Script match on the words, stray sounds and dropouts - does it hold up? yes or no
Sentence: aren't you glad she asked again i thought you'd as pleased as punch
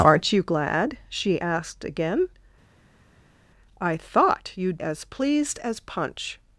yes